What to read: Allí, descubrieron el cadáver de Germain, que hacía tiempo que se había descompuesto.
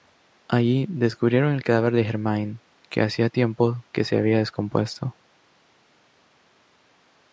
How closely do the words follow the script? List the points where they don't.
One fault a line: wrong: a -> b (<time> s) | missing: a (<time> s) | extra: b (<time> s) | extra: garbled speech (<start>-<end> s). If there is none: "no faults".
no faults